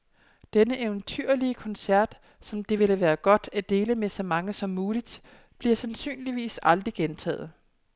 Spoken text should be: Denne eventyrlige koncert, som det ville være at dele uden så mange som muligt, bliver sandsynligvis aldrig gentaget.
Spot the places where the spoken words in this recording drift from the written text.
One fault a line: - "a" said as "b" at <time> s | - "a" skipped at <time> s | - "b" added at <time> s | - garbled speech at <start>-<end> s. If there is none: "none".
- "godt" added at 3.1 s
- "uden" said as "med" at 3.9 s